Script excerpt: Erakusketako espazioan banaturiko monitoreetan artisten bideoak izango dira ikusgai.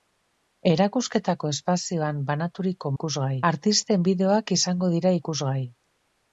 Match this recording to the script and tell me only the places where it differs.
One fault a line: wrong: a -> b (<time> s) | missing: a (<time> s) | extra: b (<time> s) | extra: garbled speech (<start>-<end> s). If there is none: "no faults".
wrong: monitoreetan -> ikusgai (2.9 s)